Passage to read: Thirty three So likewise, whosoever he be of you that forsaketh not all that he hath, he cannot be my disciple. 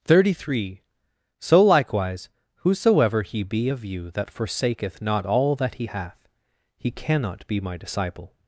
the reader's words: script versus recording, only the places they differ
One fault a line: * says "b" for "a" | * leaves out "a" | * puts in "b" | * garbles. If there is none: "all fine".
all fine